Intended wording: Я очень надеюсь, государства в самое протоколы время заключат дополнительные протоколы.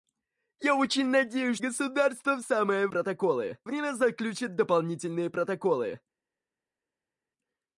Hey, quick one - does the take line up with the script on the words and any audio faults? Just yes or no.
yes